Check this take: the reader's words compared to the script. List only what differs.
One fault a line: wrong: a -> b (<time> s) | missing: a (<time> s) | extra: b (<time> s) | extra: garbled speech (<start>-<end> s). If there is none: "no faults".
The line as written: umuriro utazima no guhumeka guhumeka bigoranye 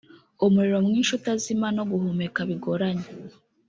extra: mwinshi (0.8 s)
missing: guhumeka (2.4 s)